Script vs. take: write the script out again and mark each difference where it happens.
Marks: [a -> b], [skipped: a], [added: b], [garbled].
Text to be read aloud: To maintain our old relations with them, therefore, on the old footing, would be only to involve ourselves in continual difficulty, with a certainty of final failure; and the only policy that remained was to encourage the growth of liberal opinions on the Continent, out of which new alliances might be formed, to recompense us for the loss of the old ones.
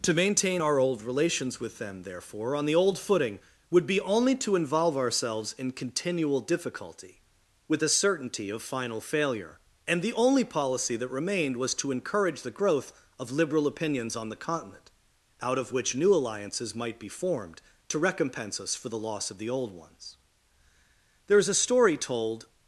To maintain our old relations with them, therefore, on the old footing, would be only to involve ourselves in continual difficulty, with a certainty of final failure; and the only policy that remained was to encourage the growth of liberal opinions on the Continent, out of which new alliances might be formed, to recompense us for the loss of the old ones. [added: There is a story told]